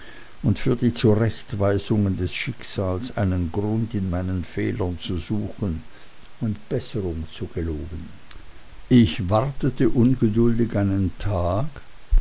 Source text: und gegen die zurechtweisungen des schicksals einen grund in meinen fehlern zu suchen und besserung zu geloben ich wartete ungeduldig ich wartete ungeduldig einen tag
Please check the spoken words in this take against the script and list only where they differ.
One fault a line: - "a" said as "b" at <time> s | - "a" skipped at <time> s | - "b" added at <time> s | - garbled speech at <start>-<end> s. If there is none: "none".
- "gegen" said as "für" at 0.6 s
- "ich wartete ungeduldig" skipped at 10.8 s